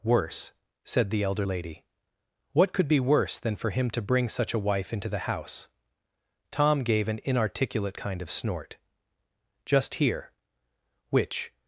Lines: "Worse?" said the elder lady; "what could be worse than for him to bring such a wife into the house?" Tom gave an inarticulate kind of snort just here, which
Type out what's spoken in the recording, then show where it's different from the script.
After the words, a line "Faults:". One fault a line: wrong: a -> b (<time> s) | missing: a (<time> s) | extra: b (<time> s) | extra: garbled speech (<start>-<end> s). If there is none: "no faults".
"Worse?" said the elder lady; "what could be worse than for him to bring such a wife into the house?" Tom gave an inarticulate kind of snort just here, which
Faults:
no faults